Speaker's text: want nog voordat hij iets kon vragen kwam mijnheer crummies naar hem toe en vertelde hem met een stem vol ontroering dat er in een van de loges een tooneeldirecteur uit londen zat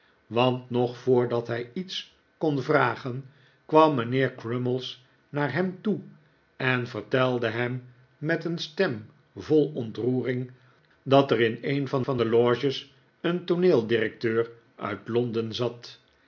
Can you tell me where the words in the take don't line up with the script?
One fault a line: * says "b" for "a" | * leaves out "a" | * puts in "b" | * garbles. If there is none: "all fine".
* puts in "van"